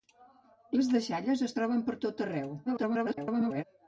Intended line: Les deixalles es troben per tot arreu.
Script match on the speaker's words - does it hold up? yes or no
no